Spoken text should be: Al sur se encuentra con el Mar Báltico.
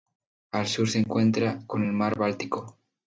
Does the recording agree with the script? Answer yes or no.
yes